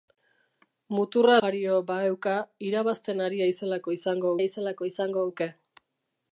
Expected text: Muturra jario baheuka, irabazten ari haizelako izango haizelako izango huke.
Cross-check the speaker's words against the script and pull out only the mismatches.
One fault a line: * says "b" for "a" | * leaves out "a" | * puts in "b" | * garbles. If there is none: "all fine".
all fine